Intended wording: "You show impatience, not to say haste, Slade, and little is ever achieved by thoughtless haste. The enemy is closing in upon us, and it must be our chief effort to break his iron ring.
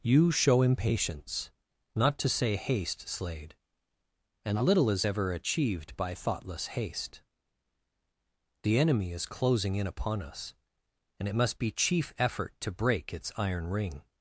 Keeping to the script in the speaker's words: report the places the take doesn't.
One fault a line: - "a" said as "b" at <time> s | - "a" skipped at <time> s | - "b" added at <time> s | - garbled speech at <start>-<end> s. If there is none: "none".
- "our" skipped at 11.7 s
- "his" said as "its" at 13.1 s